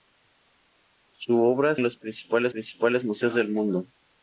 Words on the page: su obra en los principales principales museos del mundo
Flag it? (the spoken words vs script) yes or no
no